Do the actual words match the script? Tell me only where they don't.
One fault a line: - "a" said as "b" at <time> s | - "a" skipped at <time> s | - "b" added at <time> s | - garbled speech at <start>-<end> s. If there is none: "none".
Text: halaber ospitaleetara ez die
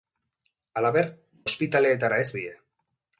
none